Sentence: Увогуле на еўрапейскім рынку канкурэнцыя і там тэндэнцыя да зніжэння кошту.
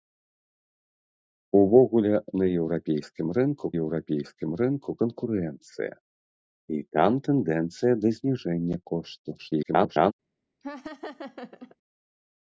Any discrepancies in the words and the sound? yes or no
yes